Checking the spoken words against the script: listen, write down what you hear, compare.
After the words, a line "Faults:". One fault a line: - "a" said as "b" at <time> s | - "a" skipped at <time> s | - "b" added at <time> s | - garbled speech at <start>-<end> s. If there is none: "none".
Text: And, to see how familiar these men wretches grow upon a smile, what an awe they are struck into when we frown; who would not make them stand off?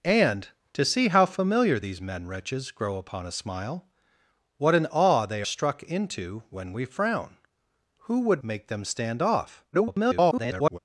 And, to see how familiar these men wretches grow upon a smile, what an awe they struck into when we frown; who would make them stand off? [garbled]
Faults:
- "are" skipped at 5.4 s
- "not" skipped at 8.4 s
- garbled speech at 9.7-10.8 s